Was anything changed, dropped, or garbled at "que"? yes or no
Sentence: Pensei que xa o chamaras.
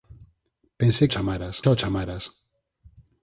yes